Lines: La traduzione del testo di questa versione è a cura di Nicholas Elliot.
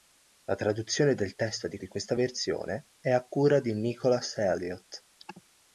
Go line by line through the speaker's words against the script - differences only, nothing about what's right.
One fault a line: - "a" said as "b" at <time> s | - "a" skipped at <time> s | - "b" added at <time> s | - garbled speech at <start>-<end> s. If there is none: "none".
- "di" added at 1.8 s